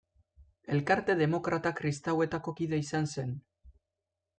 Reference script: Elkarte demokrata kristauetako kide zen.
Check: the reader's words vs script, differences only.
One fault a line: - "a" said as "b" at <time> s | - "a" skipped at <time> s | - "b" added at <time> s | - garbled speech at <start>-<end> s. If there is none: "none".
- "izan" added at 2.9 s